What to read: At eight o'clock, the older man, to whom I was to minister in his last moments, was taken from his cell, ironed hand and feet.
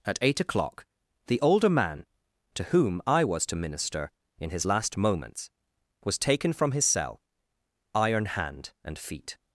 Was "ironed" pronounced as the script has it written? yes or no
no